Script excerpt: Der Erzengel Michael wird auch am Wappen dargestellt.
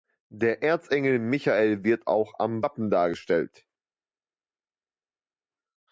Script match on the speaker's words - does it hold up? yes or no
yes